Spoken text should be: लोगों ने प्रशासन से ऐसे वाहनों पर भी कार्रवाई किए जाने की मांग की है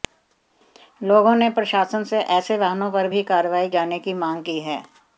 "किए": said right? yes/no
no